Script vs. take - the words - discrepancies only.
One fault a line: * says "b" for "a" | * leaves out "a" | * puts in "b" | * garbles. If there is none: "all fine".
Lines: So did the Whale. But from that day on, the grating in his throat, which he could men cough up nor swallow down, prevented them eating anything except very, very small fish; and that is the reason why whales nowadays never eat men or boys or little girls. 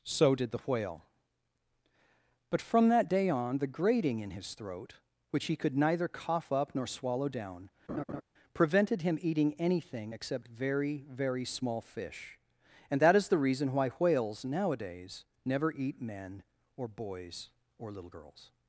* says "neither" for "men"
* says "him" for "them"